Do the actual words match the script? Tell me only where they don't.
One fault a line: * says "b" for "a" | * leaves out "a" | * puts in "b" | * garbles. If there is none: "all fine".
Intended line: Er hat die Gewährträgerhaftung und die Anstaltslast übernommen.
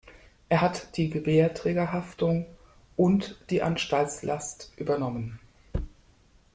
all fine